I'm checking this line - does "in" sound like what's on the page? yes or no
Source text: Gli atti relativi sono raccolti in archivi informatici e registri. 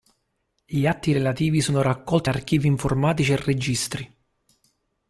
no